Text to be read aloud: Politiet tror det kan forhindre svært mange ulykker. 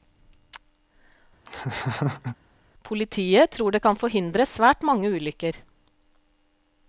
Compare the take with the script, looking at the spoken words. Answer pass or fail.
pass